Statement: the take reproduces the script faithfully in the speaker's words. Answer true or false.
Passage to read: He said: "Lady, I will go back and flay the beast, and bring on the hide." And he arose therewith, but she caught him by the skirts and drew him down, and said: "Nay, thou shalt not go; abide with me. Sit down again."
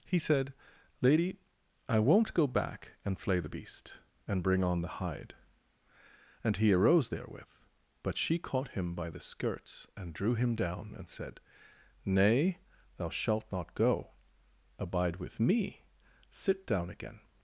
false